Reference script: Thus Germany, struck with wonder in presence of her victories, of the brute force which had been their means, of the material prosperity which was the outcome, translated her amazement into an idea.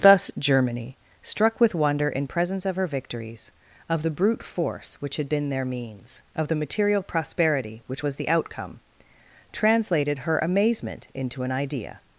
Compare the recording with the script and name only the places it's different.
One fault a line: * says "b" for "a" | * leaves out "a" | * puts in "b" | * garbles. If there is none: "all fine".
all fine